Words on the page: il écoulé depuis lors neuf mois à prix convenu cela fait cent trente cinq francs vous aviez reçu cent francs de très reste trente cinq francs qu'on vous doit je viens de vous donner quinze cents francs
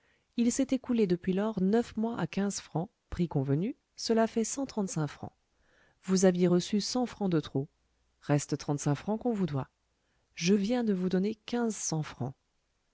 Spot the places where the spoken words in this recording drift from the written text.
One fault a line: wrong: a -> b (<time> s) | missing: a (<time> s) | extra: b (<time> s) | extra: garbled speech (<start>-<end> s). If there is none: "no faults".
extra: s'est (0.5 s)
extra: quinze francs (2.2 s)
wrong: très -> trop (7.4 s)